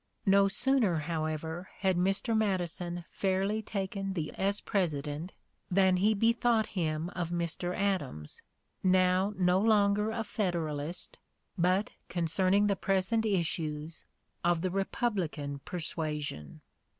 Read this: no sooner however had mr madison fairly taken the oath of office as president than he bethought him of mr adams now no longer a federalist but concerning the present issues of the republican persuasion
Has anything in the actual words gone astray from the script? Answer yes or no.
yes